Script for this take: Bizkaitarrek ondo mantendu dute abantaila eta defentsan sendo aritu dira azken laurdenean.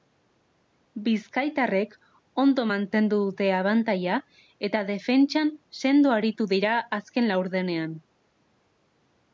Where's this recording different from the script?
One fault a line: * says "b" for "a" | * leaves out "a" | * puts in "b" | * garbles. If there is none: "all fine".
all fine